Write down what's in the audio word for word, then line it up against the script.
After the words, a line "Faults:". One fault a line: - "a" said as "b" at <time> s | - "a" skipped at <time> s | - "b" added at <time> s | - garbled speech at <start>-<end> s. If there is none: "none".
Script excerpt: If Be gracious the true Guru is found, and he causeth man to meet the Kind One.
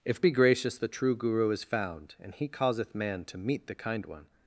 If Be gracious the true Guru is found, and he causeth man to meet the Kind One.
Faults:
none